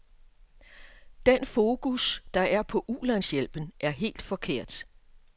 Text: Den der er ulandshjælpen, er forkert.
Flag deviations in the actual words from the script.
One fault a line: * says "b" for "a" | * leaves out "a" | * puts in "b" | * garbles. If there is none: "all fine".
* puts in "fokus"
* puts in "på"
* puts in "helt"